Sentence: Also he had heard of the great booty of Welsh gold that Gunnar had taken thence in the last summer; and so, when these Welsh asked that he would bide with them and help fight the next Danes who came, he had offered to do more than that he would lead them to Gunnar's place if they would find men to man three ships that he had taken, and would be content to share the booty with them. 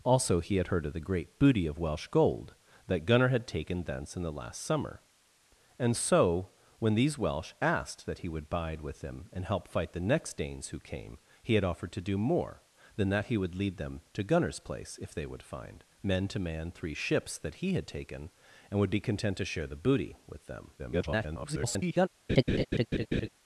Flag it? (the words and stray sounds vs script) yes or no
yes